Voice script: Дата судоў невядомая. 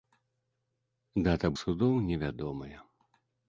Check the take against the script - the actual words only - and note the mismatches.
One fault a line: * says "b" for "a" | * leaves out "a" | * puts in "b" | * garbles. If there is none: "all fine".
all fine